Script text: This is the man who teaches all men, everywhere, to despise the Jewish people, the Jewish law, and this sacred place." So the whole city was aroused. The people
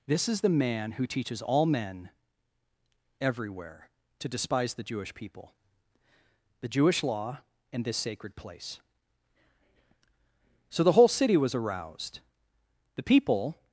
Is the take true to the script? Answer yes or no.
yes